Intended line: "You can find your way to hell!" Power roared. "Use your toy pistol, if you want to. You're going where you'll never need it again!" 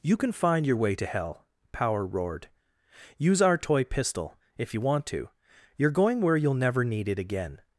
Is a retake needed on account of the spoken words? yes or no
yes